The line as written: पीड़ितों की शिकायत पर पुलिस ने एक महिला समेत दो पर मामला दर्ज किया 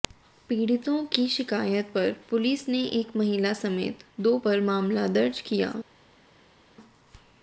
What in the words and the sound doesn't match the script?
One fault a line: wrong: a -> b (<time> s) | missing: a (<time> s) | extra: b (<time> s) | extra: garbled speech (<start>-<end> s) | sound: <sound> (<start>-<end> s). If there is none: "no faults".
no faults